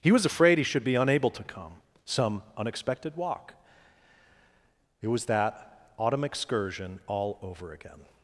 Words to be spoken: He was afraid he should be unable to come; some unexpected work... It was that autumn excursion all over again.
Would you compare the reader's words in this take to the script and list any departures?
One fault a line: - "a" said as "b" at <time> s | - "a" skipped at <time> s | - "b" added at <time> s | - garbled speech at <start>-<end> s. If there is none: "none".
- "work" said as "walk" at 3.1 s